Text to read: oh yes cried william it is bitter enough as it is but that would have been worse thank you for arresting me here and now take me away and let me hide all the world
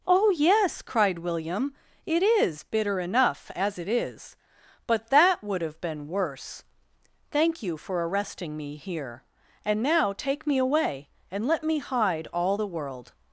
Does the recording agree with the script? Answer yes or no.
yes